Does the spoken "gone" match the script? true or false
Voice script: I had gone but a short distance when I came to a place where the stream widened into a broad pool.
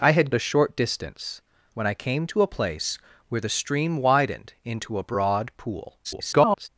false